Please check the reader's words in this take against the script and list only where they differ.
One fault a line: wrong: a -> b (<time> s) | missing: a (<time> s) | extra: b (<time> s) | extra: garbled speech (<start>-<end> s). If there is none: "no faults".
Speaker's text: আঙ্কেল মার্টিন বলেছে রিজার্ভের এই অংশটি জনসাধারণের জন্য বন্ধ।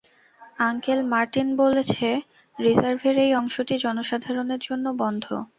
no faults